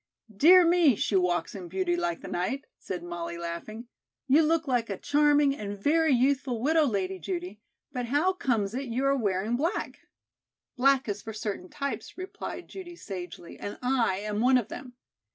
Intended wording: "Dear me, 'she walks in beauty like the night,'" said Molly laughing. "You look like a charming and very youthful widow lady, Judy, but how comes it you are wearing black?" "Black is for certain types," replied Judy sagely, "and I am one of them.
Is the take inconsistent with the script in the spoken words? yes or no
no